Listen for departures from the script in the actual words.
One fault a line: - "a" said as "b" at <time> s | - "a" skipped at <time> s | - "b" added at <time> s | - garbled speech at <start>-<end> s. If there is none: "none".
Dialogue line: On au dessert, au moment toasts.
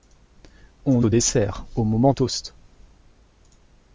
none